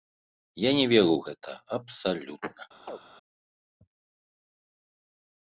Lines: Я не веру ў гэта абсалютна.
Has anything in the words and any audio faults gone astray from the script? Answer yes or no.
yes